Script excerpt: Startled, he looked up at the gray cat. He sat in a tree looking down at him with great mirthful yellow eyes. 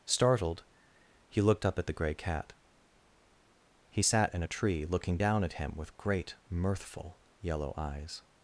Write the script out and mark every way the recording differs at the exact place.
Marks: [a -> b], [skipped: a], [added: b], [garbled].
Startled, he looked up at the gray cat. He sat in a tree looking down at him with great mirthful yellow eyes.